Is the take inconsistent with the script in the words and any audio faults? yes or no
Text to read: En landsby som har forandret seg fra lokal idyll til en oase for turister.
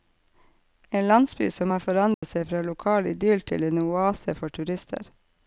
yes